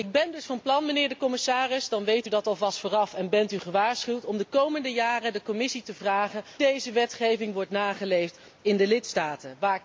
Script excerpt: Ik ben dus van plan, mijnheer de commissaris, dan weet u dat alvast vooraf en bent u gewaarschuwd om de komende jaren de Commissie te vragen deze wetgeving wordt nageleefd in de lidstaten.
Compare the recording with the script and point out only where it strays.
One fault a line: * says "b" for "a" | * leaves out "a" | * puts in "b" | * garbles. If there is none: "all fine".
all fine